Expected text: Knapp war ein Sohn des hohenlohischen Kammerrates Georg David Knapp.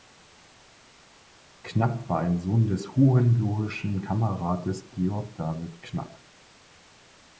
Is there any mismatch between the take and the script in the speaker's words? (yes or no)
no